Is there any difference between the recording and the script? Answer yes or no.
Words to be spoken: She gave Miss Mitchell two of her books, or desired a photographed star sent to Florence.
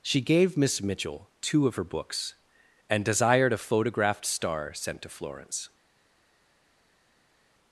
yes